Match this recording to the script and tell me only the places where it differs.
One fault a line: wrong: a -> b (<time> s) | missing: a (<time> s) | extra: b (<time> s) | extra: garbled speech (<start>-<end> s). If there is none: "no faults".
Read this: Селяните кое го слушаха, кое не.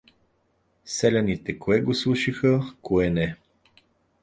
no faults